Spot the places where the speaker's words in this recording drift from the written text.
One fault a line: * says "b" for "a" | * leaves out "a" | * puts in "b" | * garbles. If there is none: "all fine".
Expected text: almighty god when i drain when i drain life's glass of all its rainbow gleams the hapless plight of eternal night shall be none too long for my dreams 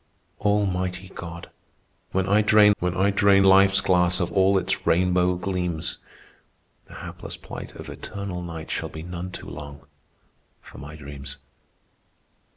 all fine